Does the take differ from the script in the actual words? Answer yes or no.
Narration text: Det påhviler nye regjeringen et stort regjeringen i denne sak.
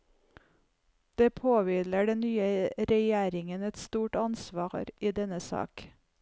yes